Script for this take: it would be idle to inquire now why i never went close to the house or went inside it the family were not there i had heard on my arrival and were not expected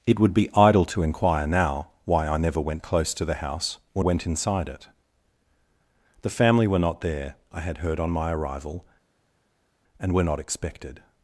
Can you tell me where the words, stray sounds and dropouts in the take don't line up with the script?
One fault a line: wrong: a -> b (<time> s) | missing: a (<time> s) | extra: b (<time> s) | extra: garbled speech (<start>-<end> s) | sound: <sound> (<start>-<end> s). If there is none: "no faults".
no faults